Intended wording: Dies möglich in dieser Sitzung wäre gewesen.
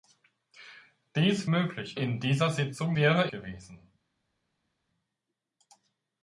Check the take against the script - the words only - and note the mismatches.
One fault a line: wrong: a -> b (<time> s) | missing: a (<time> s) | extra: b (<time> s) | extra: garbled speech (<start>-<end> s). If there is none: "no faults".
no faults